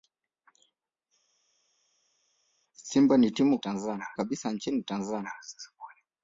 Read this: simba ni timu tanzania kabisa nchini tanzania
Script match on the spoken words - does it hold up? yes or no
yes